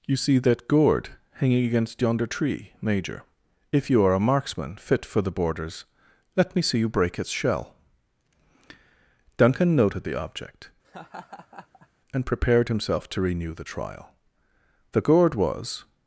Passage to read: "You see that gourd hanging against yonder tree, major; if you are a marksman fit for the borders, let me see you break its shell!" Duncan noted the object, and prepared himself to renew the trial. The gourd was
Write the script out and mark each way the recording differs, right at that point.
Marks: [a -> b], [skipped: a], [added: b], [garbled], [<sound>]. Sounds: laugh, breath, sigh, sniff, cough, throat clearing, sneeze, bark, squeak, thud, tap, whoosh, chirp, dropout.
"You see that gourd hanging against yonder tree, major; if you are a marksman fit for the borders, let me see you break its shell!" Duncan noted the object, [laugh] and prepared himself to renew the trial. The gourd was